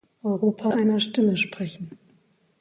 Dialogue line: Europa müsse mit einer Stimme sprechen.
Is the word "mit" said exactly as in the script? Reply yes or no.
no